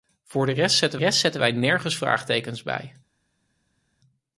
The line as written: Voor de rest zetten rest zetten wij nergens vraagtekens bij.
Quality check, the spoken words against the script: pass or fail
pass